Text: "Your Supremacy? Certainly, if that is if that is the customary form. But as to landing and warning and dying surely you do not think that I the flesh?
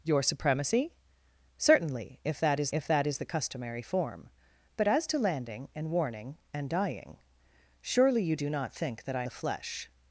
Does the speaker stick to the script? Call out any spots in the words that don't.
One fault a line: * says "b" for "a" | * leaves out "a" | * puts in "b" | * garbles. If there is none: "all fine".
all fine